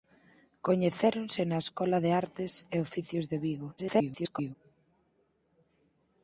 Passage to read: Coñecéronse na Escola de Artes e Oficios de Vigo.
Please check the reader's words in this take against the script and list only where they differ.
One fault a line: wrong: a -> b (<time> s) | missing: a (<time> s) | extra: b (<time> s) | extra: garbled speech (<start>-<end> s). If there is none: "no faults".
extra: garbled speech (3.8-4.5 s)